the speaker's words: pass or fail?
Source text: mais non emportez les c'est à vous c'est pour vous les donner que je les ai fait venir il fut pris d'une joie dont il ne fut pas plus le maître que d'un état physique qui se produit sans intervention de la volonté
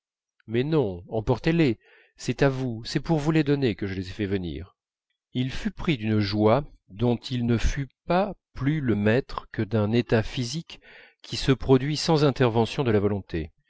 pass